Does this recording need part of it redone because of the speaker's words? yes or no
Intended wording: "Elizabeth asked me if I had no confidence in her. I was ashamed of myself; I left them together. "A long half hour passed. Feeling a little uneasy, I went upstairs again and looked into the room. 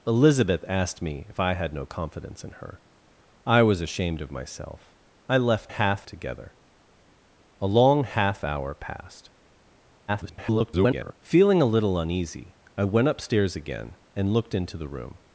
yes